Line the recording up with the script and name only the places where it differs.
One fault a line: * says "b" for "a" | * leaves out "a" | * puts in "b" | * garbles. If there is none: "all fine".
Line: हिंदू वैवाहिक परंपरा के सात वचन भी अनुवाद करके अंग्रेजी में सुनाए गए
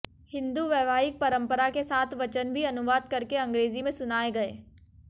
all fine